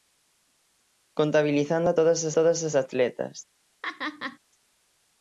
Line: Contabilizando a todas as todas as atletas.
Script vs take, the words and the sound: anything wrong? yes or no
yes